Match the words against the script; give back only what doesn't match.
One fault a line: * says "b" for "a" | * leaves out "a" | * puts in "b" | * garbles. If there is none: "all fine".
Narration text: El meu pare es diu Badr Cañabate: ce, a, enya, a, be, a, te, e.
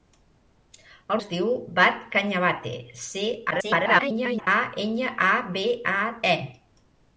* leaves out "meu pare"
* garbles
* leaves out "te"